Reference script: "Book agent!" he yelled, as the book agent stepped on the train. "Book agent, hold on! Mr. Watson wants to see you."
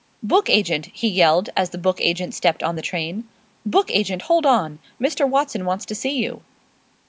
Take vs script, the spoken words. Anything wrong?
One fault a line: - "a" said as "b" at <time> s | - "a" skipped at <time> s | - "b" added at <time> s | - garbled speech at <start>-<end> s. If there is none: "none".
none